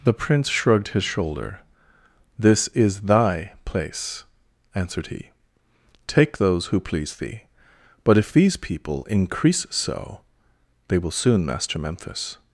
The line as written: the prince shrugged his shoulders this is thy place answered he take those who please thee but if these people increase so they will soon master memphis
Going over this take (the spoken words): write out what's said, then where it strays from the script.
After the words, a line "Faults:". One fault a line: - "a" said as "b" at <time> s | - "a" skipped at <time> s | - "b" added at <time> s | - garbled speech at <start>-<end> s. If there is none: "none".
the prince shrugged his shoulder this is thy place answered he take those who please thee but if these people increase so they will soon master memphis
Faults:
- "shoulders" said as "shoulder" at 1.0 s